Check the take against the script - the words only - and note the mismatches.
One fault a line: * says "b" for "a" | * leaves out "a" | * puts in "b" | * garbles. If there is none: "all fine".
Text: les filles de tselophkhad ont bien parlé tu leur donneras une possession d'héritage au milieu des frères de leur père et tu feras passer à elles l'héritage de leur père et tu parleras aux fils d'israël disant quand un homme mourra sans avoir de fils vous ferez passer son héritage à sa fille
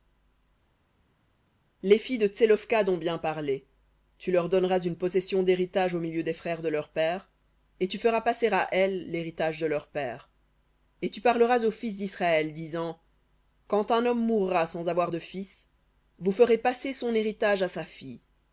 all fine